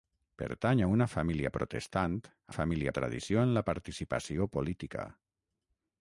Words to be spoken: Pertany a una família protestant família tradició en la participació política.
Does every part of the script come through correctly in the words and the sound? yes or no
yes